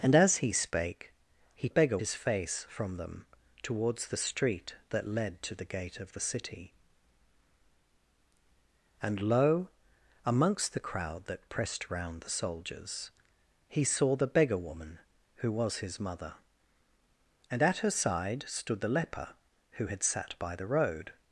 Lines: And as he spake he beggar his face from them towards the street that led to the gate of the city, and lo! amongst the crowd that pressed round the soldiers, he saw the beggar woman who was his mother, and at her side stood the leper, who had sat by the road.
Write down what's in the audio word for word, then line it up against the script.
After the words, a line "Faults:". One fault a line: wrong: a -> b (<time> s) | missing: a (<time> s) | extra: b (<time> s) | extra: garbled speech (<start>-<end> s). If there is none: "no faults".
And as he spake he beggar his face from them towards the street that led to the gate of the city, and lo! amongst the crowd that pressed round the soldiers, he saw the beggar woman who was his mother, and at her side stood the leper, who had sat by the road.
Faults:
no faults